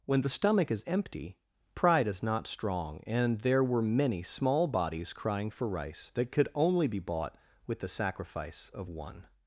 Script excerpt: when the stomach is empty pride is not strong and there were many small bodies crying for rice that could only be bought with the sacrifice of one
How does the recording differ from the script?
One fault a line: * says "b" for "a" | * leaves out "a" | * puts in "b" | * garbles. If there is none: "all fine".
all fine